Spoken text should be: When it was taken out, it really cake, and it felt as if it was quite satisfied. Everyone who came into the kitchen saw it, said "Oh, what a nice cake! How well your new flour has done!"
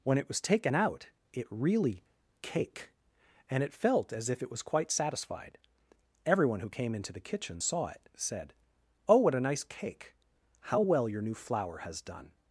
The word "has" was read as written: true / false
true